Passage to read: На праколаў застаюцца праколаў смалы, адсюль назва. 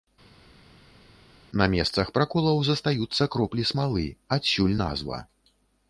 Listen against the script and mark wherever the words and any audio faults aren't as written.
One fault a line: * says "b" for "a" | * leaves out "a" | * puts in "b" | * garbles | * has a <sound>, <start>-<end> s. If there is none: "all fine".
* puts in "месцах"
* says "кроплі" for "праколаў"